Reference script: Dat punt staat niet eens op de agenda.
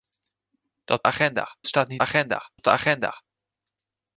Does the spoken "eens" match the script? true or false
false